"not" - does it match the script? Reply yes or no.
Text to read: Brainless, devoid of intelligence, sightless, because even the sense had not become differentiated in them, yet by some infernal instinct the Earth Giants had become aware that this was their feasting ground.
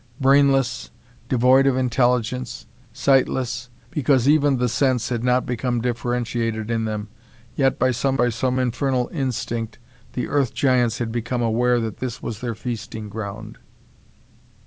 yes